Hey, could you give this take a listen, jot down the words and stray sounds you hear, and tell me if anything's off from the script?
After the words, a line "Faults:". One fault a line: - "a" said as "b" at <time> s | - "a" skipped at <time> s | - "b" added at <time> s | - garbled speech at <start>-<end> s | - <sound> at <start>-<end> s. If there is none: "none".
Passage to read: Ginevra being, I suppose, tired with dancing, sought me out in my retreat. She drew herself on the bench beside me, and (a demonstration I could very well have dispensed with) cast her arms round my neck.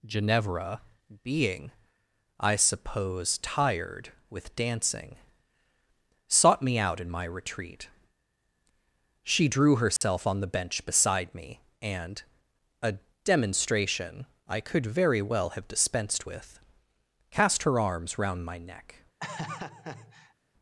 Ginevra being, I suppose, tired with dancing, sought me out in my retreat. She drew herself on the bench beside me, and (a demonstration I could very well have dispensed with) cast her arms round my neck.
Faults:
- dropout at 10.0-10.0 s
- laugh at 19.2-20.3 s